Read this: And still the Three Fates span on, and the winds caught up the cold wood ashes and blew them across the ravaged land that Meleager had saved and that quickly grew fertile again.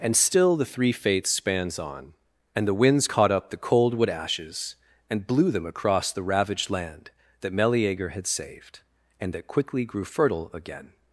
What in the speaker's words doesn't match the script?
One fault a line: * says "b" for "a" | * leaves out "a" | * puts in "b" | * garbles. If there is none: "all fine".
* says "spans" for "span"